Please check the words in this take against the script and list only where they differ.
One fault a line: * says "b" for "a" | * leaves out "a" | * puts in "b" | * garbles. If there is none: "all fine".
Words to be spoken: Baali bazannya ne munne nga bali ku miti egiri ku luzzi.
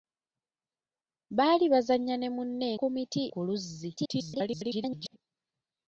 * leaves out "nga bali"
* leaves out "egiri"
* garbles